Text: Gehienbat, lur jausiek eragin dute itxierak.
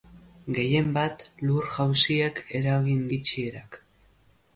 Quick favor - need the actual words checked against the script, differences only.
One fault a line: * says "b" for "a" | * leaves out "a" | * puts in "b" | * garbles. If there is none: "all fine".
* leaves out "dute"